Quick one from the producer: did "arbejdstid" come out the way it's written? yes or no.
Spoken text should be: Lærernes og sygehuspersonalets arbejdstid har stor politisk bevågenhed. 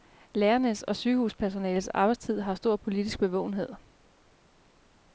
yes